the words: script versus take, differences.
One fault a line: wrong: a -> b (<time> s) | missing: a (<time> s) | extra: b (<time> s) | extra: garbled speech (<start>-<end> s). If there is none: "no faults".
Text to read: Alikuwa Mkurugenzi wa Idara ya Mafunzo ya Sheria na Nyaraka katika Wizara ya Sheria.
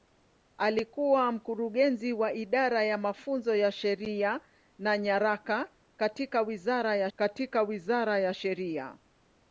extra: katika Wizara ya (7.1 s)